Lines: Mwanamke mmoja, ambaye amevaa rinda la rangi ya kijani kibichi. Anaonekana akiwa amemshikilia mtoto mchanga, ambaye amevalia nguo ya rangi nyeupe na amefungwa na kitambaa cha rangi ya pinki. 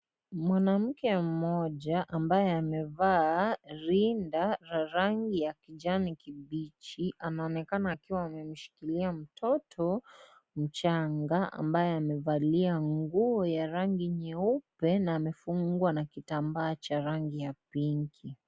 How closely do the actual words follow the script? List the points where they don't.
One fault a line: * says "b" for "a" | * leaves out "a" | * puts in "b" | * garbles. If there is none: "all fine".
all fine